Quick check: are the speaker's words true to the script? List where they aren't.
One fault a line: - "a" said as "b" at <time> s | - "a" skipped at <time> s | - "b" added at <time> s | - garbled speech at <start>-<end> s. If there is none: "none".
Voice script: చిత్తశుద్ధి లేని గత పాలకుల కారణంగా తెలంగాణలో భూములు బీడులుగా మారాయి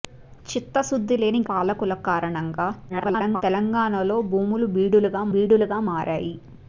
- "గత" skipped at 1.4 s
- garbled speech at 2.9-3.4 s
- "బీడులుగా" added at 5.3 s